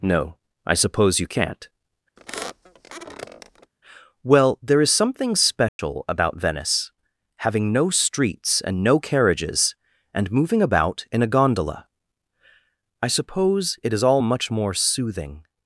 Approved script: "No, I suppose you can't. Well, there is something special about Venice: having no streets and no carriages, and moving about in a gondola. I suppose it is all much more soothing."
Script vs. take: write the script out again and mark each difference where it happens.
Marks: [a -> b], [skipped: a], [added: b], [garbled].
"No, I suppose you can't. Well, there is something special about Venice: having no streets and no carriages, and moving about in a gondola. I suppose it is all much more soothing."